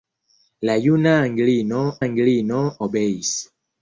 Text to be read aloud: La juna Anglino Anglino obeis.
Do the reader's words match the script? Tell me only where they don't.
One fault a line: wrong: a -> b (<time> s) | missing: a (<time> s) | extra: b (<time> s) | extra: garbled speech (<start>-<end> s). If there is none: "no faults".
no faults